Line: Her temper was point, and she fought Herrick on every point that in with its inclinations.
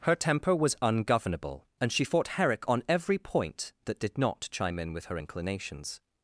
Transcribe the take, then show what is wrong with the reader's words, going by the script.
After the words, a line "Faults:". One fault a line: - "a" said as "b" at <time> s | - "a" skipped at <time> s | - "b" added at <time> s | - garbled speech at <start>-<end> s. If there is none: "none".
Her temper was ungovernable, and she fought Herrick on every point that did not chime in with her inclinations.
Faults:
- "point" said as "ungovernable" at 0.8 s
- "did not chime" added at 4.0 s
- "its" said as "her" at 5.0 s